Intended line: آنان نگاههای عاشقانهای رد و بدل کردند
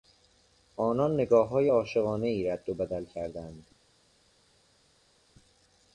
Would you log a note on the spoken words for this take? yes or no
no